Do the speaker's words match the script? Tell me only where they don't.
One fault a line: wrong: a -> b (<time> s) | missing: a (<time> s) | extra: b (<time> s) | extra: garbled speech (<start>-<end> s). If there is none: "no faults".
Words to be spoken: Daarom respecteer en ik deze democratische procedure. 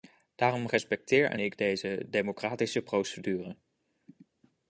no faults